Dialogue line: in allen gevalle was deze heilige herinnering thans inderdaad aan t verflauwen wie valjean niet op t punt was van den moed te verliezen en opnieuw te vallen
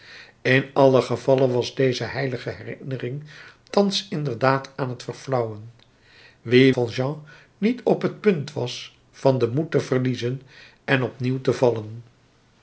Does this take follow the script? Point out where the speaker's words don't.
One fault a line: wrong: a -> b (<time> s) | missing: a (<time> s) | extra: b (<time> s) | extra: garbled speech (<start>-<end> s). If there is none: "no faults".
no faults